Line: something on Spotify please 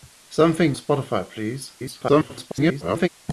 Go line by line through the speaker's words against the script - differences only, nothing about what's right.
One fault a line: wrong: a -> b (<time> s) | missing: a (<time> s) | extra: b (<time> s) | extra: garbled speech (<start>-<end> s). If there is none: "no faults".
missing: on (0.8 s)
extra: garbled speech (1.8-3.1 s)